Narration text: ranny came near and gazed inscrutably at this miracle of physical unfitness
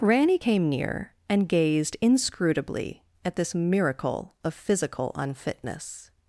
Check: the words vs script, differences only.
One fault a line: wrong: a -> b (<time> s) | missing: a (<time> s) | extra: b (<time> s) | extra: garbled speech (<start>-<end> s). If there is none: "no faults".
no faults